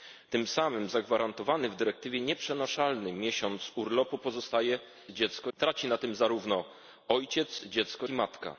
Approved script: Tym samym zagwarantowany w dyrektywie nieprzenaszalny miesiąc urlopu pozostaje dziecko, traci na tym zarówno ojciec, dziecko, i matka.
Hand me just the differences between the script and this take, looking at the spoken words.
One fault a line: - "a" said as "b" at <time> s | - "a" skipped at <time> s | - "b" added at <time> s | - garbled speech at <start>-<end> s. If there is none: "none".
none